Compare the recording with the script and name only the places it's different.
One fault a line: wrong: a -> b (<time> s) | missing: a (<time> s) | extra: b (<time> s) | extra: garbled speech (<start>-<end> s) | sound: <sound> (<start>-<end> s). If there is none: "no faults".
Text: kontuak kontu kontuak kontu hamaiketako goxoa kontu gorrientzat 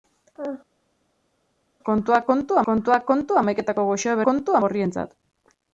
no faults